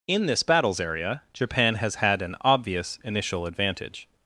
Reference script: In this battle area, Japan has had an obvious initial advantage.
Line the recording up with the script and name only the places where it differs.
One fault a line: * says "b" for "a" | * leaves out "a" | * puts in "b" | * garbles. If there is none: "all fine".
* says "battles" for "battle"